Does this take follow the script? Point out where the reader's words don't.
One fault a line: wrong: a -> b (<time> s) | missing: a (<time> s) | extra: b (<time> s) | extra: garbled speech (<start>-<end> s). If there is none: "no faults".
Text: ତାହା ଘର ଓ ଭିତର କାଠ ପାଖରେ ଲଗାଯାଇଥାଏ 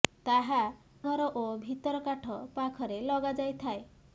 no faults